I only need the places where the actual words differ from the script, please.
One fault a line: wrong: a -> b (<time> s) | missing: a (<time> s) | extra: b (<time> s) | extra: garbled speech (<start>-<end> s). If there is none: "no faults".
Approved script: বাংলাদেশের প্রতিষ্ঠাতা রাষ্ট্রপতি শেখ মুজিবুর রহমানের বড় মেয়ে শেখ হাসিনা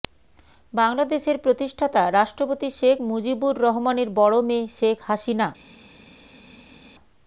no faults